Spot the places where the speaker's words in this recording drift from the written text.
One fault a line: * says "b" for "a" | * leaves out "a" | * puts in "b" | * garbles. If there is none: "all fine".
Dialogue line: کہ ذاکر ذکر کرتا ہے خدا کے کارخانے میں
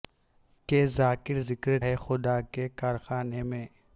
* leaves out "کرتا"